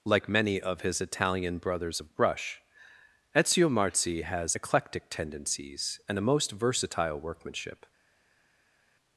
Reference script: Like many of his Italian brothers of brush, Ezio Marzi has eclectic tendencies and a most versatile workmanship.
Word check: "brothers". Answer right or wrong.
right